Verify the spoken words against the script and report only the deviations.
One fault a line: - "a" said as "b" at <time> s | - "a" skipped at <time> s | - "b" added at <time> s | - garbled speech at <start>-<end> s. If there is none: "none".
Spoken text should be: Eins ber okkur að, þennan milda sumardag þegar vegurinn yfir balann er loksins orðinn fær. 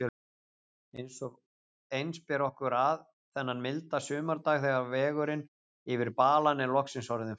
none